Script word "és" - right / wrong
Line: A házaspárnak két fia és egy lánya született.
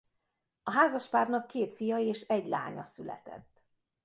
right